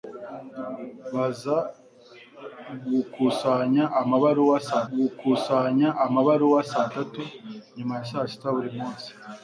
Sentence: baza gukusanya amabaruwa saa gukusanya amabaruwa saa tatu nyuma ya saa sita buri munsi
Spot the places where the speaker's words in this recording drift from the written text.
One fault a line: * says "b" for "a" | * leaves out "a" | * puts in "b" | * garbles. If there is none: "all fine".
all fine